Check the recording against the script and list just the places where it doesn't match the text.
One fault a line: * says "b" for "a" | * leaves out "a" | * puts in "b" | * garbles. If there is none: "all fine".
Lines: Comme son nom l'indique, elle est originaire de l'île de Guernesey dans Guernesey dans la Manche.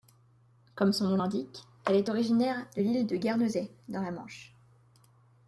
* leaves out "Guernesey dans"